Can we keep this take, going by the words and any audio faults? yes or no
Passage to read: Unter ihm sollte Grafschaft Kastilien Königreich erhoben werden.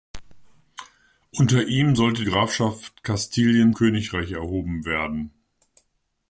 yes